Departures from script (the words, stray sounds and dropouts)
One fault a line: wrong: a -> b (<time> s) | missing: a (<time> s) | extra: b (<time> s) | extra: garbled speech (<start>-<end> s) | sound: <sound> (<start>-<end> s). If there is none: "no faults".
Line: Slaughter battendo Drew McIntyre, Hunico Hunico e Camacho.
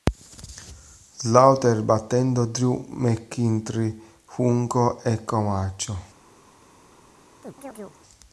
missing: Hunico (5.0 s)
sound: chirp (7.4-8.0 s)